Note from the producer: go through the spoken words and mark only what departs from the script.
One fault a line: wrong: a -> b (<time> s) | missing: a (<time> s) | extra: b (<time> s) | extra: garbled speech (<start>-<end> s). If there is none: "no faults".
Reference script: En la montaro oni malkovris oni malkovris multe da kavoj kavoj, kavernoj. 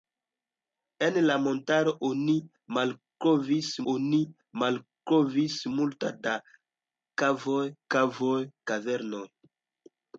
no faults